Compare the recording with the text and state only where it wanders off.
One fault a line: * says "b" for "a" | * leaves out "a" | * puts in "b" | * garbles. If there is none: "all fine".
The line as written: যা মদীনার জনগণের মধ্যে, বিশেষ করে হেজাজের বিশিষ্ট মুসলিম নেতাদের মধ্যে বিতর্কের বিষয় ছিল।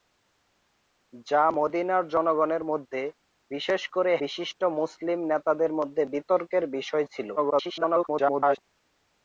* leaves out "হেজাজের"
* garbles